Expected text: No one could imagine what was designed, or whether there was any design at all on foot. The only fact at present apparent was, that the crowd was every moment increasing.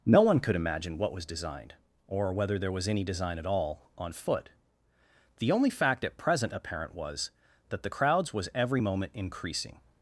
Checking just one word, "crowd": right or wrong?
wrong